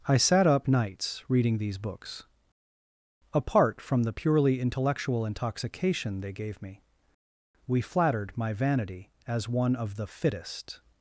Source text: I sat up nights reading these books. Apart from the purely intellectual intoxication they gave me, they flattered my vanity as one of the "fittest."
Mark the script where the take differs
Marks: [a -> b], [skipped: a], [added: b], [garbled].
I sat up nights reading these books. Apart from the purely intellectual intoxication they gave me, [they -> we] flattered my vanity as one of the "fittest."